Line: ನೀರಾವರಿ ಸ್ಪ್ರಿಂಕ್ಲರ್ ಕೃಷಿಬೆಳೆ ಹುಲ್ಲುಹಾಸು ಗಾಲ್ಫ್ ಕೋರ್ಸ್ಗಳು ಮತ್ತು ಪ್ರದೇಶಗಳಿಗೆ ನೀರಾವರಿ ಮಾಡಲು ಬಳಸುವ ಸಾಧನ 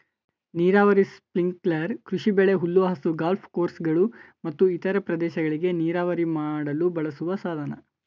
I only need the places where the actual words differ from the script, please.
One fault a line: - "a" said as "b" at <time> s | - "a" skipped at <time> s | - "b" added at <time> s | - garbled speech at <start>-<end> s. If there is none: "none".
- "ಇತರ" added at 4.8 s